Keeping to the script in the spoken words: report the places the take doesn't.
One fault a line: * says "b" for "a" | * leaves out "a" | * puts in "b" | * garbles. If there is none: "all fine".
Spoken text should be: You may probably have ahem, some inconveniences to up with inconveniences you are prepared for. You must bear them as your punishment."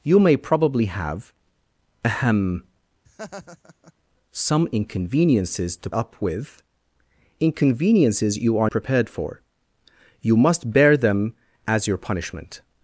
all fine